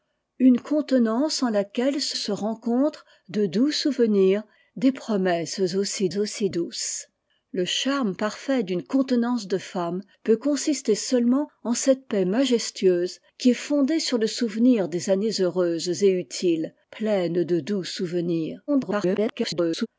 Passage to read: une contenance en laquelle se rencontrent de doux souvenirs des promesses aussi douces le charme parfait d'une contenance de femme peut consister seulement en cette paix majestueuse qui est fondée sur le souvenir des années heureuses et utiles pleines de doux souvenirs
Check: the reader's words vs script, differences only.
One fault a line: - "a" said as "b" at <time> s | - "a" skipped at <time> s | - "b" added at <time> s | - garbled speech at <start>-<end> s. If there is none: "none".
- "se" added at 2.1 s
- "aussi" added at 6.2 s
- garbled speech at 18.7-19.9 s